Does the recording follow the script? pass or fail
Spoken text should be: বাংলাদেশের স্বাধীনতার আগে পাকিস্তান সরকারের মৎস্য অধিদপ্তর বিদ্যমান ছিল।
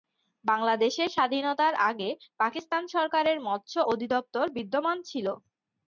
pass